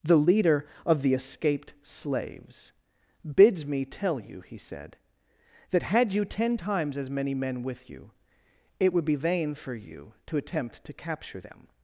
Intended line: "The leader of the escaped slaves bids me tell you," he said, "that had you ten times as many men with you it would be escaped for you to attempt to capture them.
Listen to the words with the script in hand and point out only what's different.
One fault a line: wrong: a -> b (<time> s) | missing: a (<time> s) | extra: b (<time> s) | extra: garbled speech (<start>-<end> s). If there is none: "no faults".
wrong: escaped -> vain (9.2 s)